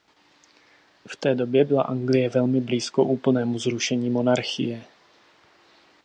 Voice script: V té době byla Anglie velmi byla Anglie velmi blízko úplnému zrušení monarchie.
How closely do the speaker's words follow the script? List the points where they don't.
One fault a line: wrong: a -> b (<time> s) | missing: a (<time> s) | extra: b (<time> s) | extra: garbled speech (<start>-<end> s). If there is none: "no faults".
missing: byla Anglie velmi (2.6 s)